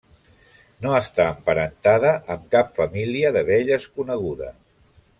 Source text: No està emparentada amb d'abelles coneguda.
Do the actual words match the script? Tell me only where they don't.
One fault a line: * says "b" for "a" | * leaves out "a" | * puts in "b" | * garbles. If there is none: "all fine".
* puts in "cap família"